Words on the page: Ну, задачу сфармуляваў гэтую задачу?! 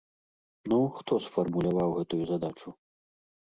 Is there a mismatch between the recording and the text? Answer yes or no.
yes